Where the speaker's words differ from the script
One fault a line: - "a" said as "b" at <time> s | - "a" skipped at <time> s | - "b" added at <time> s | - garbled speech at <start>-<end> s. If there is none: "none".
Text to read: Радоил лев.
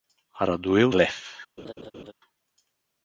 none